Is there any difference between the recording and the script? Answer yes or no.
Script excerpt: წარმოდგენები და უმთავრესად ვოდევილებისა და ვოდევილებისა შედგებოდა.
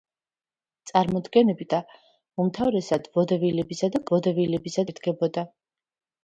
no